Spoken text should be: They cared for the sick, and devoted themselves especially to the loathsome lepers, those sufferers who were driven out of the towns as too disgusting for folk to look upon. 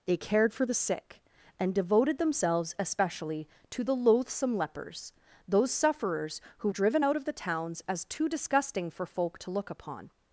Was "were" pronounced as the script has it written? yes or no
no